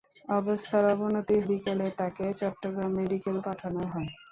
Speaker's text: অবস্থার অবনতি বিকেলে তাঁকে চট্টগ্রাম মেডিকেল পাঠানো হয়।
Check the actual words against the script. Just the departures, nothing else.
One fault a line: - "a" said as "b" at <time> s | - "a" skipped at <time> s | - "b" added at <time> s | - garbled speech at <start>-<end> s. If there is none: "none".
none